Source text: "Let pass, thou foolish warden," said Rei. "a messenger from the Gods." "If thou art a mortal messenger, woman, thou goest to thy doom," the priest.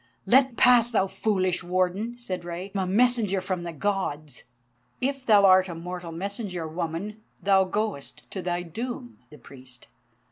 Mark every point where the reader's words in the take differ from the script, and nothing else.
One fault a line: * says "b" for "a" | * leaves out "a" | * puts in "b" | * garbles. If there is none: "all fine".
all fine